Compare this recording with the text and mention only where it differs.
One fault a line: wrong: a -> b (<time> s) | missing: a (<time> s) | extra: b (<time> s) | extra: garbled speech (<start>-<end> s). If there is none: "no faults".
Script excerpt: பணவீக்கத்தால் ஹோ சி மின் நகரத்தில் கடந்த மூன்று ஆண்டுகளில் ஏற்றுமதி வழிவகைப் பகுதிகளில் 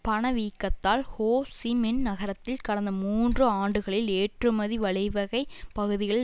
no faults